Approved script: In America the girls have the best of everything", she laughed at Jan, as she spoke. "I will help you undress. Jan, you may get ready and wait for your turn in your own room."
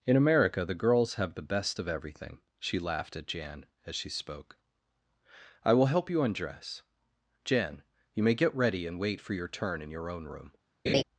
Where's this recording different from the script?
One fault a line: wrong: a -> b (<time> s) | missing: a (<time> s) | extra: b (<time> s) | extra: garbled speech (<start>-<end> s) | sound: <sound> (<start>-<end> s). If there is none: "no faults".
sound: laugh (10.9-11.0 s)